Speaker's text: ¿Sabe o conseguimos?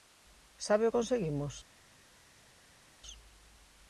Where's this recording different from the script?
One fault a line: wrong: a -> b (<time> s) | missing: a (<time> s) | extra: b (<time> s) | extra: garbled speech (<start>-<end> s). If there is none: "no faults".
no faults